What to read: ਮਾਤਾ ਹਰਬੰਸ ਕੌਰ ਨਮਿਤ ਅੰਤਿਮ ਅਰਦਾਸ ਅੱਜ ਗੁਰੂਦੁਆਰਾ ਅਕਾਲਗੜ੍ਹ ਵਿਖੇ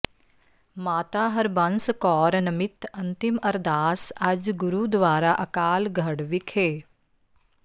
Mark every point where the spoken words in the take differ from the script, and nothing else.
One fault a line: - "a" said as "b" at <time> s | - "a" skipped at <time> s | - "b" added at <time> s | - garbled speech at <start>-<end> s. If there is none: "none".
none